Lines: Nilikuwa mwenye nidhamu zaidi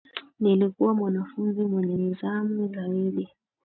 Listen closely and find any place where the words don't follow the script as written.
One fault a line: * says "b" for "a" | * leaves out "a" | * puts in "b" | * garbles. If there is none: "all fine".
* puts in "mwanafunzi"